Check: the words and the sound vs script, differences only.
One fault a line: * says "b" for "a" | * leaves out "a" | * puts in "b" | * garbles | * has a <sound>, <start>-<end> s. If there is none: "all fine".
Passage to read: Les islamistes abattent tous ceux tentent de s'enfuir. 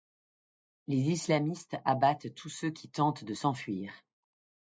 * puts in "qui"